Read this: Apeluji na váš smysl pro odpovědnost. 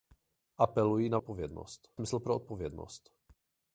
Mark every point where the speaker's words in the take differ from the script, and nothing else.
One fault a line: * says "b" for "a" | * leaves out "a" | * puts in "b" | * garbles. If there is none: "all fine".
* says "odpovědnost" for "váš"